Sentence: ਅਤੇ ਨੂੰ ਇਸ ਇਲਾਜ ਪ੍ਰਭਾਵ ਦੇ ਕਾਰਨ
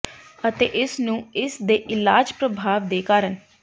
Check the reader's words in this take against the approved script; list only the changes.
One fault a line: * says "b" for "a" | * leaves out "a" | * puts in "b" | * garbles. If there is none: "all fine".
* puts in "ਇਸ"
* puts in "ਦੇ"